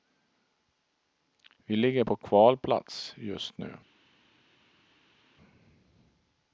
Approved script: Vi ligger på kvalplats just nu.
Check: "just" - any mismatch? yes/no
no